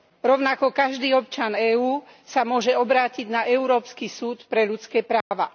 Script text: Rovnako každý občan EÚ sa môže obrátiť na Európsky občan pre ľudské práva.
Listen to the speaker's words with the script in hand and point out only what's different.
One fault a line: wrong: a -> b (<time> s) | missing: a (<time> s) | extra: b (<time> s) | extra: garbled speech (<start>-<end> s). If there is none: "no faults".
wrong: občan -> súd (4.1 s)